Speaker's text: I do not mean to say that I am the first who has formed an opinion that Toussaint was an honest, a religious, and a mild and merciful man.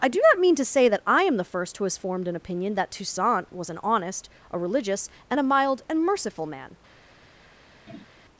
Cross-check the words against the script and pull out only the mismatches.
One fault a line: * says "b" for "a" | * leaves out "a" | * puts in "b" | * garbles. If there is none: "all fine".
all fine